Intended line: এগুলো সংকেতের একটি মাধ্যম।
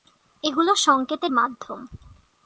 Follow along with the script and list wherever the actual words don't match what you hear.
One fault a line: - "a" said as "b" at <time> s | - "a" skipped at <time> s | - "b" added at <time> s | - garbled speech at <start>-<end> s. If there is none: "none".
- "একটি" skipped at 1.3 s